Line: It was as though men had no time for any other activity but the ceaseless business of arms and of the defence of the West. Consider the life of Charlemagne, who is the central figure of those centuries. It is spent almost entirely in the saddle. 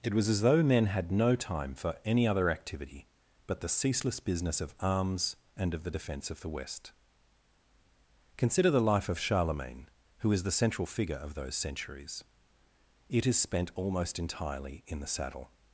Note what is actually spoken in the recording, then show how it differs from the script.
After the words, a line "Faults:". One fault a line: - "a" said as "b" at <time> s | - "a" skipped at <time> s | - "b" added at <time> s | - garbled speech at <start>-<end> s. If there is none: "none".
It was as though men had no time for any other activity but the ceaseless business of arms and of the defence of the West. Consider the life of Charlemagne, who is the central figure of those centuries. It is spent almost entirely in the saddle.
Faults:
none